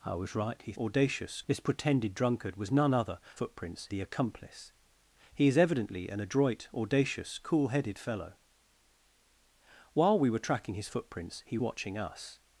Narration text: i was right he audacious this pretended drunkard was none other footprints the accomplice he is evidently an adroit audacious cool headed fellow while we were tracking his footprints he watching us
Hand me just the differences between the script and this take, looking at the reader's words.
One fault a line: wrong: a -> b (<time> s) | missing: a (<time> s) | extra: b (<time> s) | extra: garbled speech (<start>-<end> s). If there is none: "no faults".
no faults